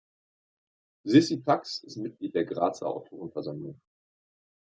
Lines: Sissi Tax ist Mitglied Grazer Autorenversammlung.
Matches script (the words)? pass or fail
fail